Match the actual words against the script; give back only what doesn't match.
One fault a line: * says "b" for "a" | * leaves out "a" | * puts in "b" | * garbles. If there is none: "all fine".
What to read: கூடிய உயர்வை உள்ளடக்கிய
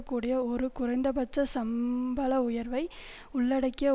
* puts in "ஒரு குறைந்தபட்ச சம்பள"